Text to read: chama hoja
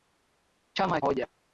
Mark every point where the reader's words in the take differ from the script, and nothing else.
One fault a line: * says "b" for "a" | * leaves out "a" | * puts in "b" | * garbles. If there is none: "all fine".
all fine